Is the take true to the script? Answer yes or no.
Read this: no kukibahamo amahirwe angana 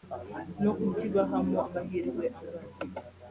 yes